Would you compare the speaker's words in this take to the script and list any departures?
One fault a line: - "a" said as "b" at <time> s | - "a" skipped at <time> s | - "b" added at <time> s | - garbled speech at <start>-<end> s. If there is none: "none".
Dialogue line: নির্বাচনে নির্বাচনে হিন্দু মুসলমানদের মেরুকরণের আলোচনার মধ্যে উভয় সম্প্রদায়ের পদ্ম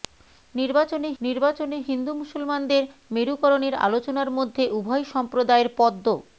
none